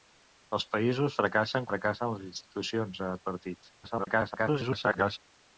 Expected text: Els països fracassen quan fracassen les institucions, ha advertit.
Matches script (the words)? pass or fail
fail